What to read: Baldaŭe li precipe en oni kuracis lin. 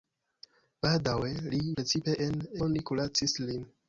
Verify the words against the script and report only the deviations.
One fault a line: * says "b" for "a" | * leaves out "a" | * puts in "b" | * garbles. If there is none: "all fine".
all fine